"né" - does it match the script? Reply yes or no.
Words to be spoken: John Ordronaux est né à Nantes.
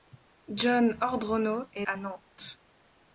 no